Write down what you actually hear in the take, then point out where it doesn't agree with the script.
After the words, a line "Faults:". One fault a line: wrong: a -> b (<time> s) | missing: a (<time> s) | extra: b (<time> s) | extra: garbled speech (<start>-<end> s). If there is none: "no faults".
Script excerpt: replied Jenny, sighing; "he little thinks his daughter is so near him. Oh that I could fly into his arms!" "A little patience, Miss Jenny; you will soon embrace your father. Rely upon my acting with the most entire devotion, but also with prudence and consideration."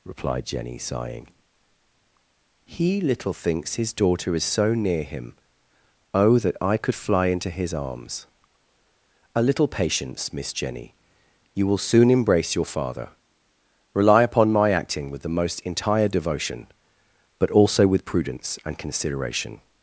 replied Jenny, sighing; "he little thinks his daughter is so near him. Oh that I could fly into his arms!" "A little patience, Miss Jenny; you will soon embrace your father. Rely upon my acting with the most entire devotion, but also with prudence and consideration."
Faults:
no faults